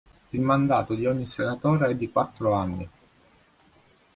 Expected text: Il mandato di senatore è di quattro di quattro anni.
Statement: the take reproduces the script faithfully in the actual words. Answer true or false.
false